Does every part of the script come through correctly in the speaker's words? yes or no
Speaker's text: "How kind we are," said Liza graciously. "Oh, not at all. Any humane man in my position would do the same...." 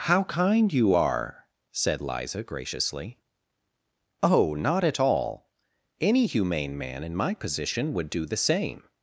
no